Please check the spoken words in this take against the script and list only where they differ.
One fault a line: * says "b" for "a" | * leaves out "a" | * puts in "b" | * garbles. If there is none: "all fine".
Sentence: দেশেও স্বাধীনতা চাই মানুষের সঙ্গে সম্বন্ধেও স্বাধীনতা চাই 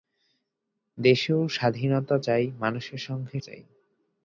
* leaves out "সম্বন্ধেও স্বাধীনতা"